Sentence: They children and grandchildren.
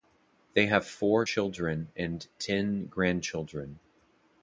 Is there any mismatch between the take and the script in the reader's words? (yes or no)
yes